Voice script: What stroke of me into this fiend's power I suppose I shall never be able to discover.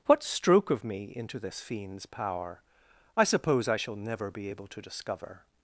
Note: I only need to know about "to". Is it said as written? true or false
true